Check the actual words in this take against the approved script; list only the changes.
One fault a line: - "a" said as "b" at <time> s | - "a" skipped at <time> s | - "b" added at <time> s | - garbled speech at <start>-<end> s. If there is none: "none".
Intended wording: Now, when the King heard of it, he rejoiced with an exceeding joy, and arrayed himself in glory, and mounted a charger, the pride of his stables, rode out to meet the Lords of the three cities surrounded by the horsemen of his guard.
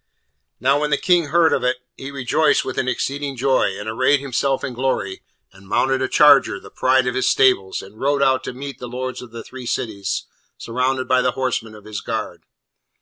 - "and" added at 7.8 s